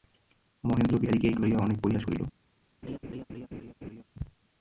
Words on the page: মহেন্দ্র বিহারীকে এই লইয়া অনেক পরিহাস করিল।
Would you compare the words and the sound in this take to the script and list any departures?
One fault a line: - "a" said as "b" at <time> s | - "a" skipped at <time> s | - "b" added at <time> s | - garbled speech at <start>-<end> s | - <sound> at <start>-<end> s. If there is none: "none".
- laugh at 2.8-4.0 s